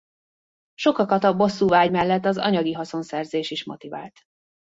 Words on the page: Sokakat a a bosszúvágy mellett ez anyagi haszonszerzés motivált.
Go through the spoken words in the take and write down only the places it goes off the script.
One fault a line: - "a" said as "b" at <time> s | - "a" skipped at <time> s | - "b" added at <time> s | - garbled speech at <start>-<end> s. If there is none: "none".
- "a" skipped at 1.4 s
- "ez" said as "az" at 2.2 s
- "is" added at 3.5 s